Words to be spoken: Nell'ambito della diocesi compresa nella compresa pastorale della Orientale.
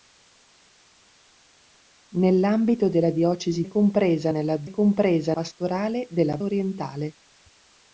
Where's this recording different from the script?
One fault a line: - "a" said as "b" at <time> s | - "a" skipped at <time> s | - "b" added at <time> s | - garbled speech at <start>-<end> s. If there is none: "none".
none